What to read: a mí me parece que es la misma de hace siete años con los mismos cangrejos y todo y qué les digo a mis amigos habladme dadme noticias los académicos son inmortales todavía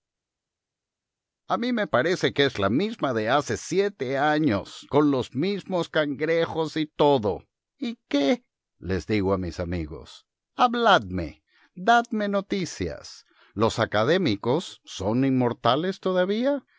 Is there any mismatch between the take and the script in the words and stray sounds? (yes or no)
no